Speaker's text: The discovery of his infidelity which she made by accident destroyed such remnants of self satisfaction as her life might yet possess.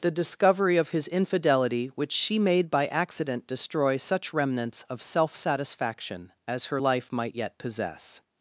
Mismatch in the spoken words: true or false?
true